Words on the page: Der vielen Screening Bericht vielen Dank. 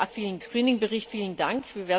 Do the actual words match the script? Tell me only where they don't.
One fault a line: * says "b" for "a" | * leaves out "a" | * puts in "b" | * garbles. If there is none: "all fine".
all fine